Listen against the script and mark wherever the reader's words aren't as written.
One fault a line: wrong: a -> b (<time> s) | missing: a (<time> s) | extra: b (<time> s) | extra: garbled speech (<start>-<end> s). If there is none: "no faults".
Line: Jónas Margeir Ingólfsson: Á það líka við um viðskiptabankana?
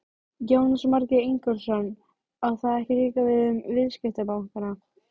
extra: ekki (2.8 s)